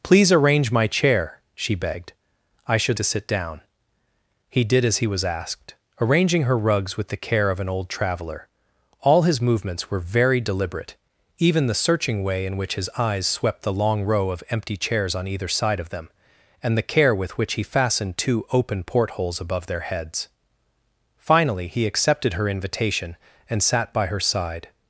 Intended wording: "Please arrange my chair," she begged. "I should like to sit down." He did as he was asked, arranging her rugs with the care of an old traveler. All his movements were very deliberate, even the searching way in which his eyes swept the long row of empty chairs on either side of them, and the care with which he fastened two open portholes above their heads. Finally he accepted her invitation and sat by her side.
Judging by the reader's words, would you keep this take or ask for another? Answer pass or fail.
fail